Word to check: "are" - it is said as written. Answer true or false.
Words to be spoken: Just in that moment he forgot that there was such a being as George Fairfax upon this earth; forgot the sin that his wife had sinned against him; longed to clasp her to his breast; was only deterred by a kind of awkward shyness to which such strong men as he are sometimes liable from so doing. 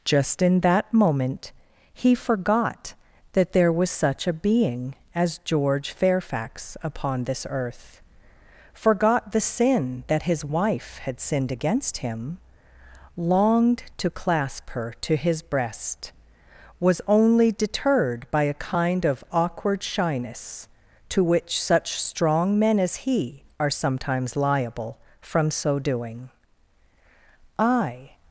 true